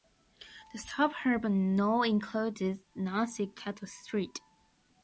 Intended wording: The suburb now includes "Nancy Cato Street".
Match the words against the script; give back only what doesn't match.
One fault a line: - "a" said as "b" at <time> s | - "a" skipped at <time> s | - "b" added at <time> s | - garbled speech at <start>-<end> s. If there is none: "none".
none